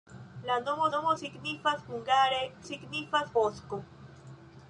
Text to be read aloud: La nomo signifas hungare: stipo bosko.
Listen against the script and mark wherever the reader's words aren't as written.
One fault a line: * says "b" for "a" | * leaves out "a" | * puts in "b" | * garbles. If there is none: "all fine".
* puts in "nomo"
* says "signifas" for "stipo"